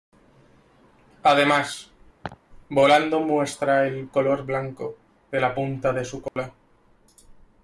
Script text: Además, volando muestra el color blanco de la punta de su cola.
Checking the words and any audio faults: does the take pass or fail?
fail